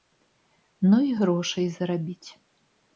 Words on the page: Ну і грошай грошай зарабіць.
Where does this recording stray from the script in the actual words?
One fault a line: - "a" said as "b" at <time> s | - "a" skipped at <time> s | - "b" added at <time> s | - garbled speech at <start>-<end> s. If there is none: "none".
- "грошай" skipped at 1.7 s